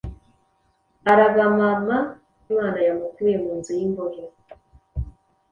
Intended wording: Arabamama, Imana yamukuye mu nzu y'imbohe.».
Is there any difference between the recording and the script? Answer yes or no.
no